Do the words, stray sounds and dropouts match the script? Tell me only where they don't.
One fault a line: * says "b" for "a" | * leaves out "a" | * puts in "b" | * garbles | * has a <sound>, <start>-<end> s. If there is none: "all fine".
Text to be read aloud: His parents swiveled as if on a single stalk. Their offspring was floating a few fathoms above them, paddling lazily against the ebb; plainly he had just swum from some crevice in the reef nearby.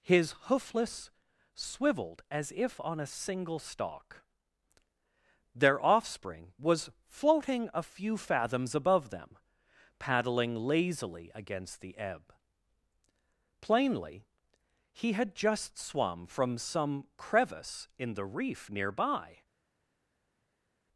* says "hoofless" for "parents"